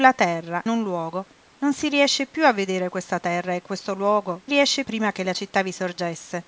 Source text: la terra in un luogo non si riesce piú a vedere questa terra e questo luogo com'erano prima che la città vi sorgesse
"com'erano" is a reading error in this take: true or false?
true